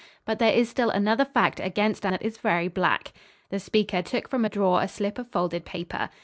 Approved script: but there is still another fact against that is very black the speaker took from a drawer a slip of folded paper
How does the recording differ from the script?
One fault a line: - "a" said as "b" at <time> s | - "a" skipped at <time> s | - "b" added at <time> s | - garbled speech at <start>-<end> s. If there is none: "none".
none